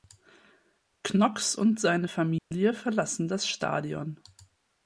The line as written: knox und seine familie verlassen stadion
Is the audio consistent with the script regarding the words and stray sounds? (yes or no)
no